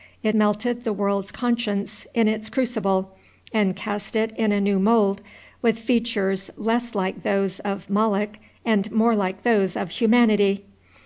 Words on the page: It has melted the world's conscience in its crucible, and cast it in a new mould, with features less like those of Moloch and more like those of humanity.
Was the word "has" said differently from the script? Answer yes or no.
yes